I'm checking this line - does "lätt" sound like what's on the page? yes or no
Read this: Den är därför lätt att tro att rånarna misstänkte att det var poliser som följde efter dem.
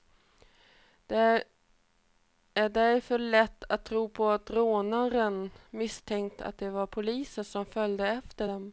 yes